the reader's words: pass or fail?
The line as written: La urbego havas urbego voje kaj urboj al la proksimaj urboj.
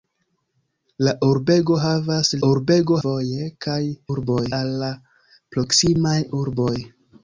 pass